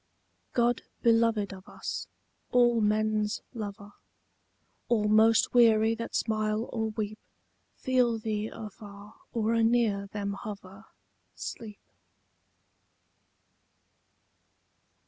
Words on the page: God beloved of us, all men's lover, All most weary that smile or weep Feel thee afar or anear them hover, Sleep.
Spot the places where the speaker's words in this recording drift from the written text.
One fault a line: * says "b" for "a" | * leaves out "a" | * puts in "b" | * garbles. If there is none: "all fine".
all fine